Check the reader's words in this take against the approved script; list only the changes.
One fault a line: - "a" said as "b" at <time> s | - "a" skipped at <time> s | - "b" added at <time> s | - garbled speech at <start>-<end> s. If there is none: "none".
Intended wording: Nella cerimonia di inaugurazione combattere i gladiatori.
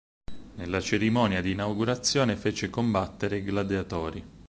- "fece" added at 2.4 s